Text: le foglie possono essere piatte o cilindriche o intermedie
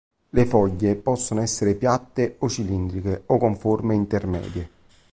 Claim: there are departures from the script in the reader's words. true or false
true